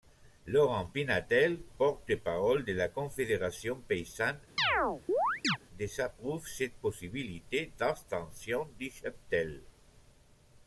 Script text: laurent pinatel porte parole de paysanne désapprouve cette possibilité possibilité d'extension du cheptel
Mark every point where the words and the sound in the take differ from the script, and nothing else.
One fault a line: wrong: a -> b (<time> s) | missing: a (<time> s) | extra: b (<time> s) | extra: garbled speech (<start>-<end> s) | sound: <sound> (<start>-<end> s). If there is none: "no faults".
extra: la confédération (2.7 s)
sound: chirp (4.6-5.6 s)
missing: possibilité (7.7 s)